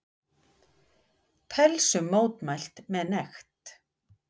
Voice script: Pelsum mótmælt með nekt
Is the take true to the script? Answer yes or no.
yes